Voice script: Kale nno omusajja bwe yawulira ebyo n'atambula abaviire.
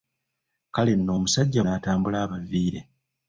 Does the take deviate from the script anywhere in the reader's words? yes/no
yes